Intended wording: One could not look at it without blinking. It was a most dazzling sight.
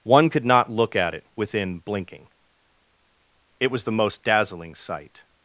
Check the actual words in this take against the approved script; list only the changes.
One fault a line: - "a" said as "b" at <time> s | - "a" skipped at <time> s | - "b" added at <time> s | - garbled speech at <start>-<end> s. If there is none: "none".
- "without" said as "within" at 1.4 s
- "a" said as "the" at 3.8 s